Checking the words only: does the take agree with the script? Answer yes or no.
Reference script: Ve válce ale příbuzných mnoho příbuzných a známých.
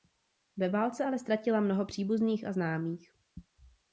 no